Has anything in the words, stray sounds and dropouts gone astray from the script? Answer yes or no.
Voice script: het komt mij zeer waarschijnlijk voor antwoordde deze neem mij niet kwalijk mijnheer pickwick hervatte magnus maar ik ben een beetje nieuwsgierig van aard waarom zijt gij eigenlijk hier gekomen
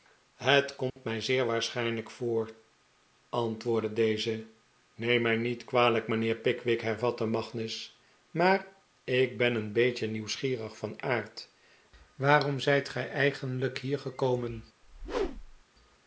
yes